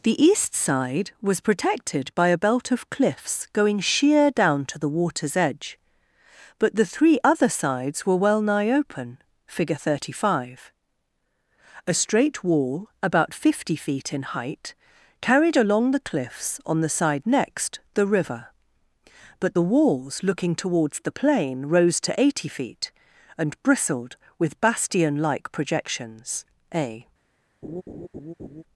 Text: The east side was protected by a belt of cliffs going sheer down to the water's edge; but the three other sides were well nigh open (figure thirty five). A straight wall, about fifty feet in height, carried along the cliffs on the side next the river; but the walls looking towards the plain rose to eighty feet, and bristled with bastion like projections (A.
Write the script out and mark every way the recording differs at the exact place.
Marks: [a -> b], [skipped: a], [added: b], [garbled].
The east side was protected by a belt of cliffs going sheer down to the water's edge; but the three other sides were well nigh open (figure thirty five). A straight wall, about fifty feet in height, carried along the cliffs on the side next the river; but the walls looking towards the plain rose to eighty feet, and bristled with bastion like projections (A.